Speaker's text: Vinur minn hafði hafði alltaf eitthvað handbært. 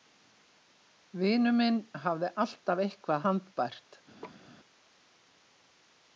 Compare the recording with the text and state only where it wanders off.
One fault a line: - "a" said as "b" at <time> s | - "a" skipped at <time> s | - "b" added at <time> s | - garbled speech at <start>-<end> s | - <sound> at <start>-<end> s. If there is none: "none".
- "hafði" skipped at 2.3 s
- laugh at 4.2-4.5 s